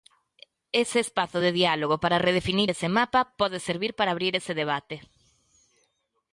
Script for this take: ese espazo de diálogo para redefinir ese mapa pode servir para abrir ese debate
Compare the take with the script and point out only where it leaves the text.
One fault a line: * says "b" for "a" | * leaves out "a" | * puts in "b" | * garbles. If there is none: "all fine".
all fine